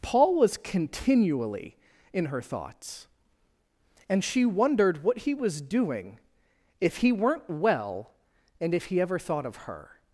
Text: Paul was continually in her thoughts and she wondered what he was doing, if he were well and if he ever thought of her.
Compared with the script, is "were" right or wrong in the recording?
wrong